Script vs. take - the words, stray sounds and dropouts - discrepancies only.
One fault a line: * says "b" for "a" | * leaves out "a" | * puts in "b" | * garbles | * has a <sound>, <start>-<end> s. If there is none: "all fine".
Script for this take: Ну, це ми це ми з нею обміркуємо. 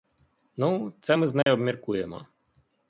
* leaves out "це ми"
* has a dropout, 1.4-1.5 s